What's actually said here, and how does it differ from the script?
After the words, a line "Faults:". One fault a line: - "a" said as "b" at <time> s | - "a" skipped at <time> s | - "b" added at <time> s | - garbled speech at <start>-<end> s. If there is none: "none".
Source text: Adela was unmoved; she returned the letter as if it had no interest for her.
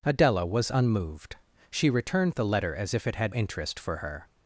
Adela was unmoved; she returned the letter as if it had interest for her.
Faults:
- "no" skipped at 3.4 s